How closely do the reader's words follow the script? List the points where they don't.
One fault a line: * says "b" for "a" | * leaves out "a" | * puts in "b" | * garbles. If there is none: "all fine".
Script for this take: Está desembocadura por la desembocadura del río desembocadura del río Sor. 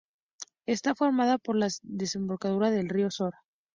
* says "formada" for "desembocadura"
* leaves out "desembocadura del río"